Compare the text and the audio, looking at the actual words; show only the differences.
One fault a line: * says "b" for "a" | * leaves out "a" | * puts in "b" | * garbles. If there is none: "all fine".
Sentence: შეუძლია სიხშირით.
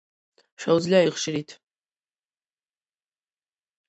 all fine